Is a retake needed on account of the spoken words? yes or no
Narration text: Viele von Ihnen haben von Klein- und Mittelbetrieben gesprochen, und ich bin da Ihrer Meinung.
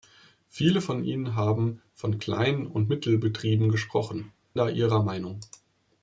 yes